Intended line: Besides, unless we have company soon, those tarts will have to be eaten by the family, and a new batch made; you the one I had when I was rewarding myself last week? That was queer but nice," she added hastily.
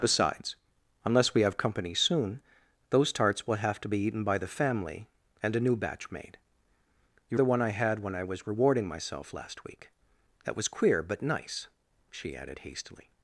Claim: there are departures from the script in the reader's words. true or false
false